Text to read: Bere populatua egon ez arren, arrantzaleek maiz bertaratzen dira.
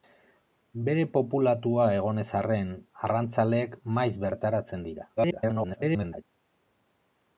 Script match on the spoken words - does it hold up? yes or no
no